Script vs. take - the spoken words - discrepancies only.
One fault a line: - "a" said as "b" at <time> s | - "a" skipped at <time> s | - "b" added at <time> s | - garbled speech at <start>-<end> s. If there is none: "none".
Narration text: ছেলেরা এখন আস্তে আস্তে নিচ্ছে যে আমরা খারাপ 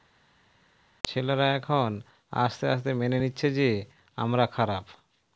- "মেনে" added at 2.9 s